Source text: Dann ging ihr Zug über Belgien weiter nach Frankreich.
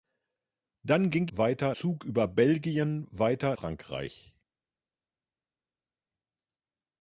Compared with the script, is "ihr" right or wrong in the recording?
wrong